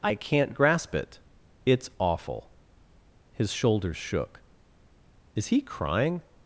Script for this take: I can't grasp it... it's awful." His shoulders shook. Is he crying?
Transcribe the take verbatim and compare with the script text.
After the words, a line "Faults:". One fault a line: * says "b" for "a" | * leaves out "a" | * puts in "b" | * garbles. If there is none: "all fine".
I can't grasp it... it's awful." His shoulders shook. Is he crying?
Faults:
all fine